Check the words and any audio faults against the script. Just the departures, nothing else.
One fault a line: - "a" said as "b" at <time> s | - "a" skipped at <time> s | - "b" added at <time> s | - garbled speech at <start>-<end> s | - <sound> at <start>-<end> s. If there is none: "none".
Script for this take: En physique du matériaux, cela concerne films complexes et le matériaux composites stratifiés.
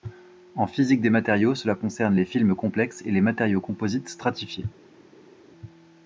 - "du" said as "des" at 1.0 s
- "les" added at 2.1 s
- "le" said as "les" at 3.1 s